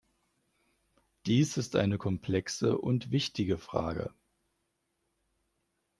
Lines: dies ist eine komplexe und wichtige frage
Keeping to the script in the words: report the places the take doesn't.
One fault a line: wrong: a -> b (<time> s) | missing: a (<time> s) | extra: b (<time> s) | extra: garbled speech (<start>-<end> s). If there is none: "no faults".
no faults